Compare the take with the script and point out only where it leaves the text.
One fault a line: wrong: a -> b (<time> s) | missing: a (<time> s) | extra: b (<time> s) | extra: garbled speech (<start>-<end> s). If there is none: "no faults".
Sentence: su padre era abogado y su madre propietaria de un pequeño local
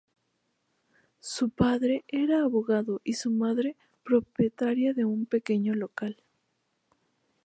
no faults